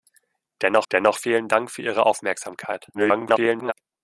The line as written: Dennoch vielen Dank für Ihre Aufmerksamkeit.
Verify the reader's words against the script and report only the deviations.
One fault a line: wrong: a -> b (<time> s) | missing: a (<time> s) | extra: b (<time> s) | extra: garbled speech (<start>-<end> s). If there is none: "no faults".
extra: dennoch (0.9 s)
extra: garbled speech (2.9-3.7 s)